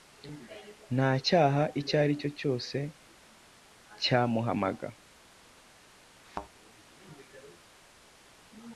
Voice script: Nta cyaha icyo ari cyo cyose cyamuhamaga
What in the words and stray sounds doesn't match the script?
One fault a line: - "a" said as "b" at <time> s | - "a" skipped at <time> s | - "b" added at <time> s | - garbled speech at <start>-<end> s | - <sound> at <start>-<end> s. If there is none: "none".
- thud at 6.3-6.5 s